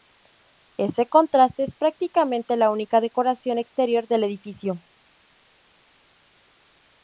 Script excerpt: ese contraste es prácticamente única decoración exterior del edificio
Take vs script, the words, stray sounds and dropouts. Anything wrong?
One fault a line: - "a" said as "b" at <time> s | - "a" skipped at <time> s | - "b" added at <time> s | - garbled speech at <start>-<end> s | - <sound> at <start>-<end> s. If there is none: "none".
- "la" added at 2.6 s